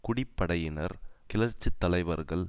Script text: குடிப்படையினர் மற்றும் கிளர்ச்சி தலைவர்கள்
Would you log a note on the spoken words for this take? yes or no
yes